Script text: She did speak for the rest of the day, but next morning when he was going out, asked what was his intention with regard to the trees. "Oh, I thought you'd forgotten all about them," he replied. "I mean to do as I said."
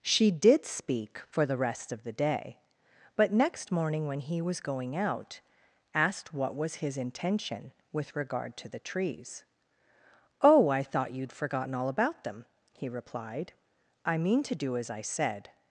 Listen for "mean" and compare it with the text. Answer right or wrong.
right